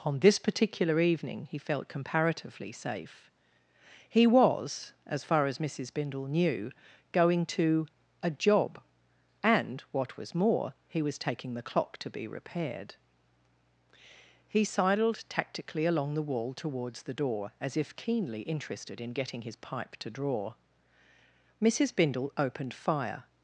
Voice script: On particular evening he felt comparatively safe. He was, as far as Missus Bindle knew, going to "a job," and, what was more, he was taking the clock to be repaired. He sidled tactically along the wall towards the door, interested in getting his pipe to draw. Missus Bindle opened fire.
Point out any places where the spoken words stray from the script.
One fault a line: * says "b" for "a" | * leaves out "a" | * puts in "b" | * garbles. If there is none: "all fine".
* puts in "this"
* puts in "as if keenly"